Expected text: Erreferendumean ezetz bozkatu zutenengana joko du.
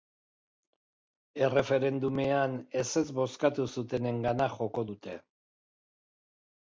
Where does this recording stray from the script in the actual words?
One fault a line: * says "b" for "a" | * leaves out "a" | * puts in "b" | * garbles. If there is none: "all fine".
* says "dute" for "du"